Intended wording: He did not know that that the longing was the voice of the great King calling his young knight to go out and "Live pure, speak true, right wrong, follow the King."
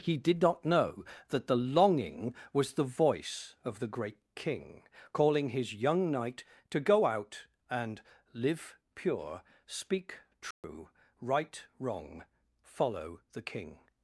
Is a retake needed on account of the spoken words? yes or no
yes